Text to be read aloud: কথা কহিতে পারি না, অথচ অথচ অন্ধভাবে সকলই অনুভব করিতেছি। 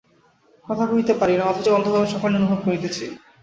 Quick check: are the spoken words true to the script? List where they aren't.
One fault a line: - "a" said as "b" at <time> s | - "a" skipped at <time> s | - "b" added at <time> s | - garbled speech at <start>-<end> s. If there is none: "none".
- "অথচ" skipped at 1.7 s